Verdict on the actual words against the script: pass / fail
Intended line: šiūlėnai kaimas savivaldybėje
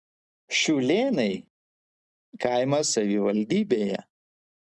pass